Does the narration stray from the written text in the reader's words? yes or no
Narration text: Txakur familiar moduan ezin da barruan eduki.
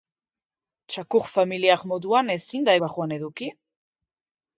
no